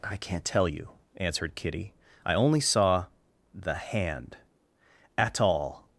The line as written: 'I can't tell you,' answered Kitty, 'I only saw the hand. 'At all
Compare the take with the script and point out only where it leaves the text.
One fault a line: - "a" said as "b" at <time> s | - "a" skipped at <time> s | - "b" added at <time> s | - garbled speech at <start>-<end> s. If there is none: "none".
none